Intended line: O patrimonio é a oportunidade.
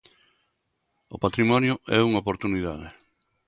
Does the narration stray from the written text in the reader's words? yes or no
yes